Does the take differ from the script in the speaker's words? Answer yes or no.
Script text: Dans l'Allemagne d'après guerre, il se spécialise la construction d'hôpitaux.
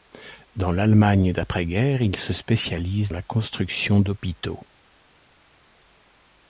no